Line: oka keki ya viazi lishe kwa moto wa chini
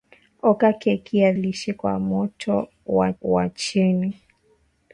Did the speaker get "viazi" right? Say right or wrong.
wrong